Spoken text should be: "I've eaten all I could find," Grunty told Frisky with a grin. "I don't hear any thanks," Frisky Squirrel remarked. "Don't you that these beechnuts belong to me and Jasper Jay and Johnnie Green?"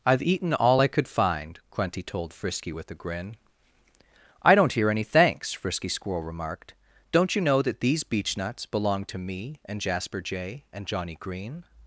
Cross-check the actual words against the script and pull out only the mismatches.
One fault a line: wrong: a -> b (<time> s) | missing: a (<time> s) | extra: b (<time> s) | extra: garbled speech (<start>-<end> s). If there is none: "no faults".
extra: know (7.4 s)